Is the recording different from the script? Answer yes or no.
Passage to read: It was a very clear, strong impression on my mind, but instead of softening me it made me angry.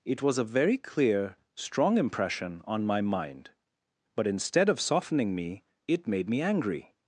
no